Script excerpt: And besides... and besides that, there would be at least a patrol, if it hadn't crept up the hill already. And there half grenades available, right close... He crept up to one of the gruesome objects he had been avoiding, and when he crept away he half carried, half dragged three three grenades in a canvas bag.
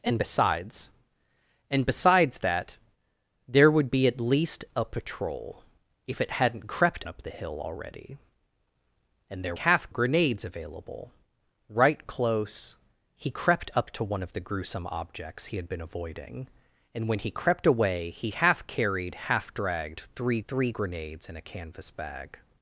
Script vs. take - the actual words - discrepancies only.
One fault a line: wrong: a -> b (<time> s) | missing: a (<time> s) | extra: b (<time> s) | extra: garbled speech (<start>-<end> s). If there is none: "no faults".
no faults